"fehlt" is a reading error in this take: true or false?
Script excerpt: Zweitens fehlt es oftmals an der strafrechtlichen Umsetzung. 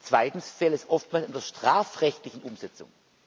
false